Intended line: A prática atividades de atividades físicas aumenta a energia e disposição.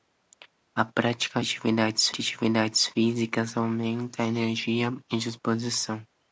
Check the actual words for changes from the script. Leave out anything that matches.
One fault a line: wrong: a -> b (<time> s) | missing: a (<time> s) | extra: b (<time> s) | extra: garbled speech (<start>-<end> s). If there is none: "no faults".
no faults